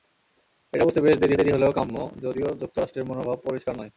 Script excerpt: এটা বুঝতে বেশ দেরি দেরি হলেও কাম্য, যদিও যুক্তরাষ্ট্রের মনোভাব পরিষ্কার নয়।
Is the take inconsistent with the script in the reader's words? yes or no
no